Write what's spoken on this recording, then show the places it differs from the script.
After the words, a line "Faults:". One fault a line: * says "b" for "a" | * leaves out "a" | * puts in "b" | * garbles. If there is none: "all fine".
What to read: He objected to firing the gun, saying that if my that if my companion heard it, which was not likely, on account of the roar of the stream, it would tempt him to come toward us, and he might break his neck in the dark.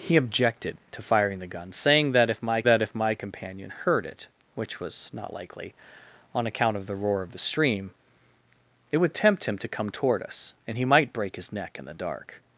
He objected to firing the gun, saying that if my that if my companion heard it, which was not likely, on account of the roar of the stream, it would tempt him to come toward us, and he might break his neck in the dark.
Faults:
all fine